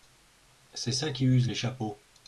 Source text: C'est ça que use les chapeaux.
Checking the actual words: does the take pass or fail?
fail